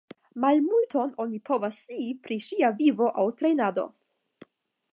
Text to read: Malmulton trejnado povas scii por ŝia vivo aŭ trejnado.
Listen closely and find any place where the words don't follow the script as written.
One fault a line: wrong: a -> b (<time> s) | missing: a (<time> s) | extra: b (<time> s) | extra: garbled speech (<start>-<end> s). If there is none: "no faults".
wrong: trejnado -> oni (1.2 s)
wrong: por -> pri (2.2 s)